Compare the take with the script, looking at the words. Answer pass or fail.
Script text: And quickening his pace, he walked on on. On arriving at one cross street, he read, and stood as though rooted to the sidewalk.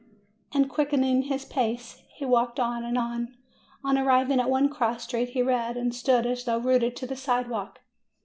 fail